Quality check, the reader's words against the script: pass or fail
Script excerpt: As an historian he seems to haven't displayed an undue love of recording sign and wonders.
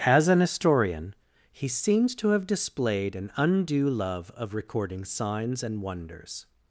fail